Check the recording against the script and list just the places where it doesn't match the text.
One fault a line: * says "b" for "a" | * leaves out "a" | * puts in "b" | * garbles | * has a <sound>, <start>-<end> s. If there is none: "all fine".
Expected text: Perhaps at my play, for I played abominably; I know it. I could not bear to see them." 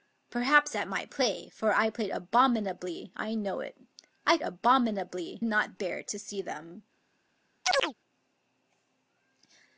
* says "abominably" for "could"
* has a chirp, 7.6-7.9 s